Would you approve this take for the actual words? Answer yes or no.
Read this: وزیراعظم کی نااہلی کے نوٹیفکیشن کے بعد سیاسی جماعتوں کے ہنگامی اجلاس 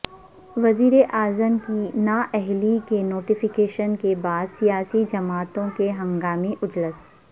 yes